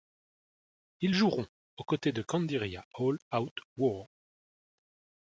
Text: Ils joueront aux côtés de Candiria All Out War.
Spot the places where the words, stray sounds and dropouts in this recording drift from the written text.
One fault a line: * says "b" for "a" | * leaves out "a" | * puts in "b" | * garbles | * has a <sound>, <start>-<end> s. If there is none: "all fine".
all fine